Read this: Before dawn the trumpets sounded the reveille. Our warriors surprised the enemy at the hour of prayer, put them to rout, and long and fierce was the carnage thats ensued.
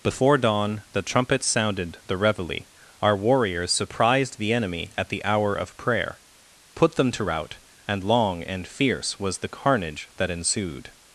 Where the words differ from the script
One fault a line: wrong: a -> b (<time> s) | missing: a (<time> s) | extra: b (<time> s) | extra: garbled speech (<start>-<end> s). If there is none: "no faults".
wrong: thats -> that (10.2 s)